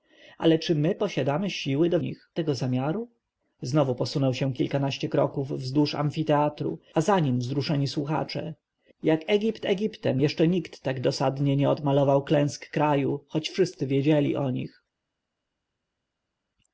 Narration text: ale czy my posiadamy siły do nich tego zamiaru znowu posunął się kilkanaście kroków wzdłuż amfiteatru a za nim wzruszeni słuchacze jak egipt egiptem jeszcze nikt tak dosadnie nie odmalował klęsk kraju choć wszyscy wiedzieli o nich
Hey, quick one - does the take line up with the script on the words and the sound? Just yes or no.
yes